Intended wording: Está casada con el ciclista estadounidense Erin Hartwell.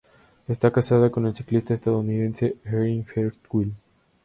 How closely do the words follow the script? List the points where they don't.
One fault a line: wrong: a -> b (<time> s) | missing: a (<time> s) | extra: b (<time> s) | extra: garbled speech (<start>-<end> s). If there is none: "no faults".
no faults